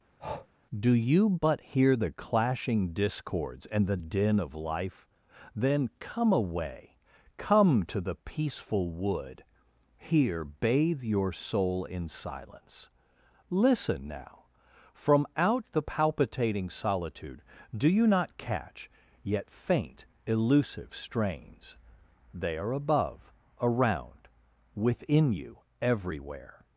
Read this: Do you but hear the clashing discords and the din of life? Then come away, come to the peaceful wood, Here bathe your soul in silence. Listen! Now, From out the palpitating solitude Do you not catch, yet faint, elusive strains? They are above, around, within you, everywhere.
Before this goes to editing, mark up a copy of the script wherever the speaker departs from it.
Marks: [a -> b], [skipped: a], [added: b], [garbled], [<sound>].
[breath] Do you but hear the clashing discords and the din of life? Then come away, come to the peaceful wood, Here bathe your soul in silence. Listen! Now, From out the palpitating solitude Do you not catch, yet faint, elusive strains? They are above, around, within you, everywhere.